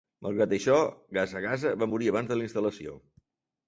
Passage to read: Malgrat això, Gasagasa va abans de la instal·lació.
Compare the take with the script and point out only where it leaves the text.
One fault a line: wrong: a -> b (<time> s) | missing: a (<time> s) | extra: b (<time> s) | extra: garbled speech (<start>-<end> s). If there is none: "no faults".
extra: morir (1.9 s)